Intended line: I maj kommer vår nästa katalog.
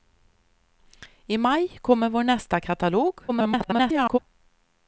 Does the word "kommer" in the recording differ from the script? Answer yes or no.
no